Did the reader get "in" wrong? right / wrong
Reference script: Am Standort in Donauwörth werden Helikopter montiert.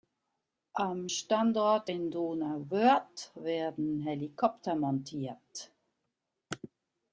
right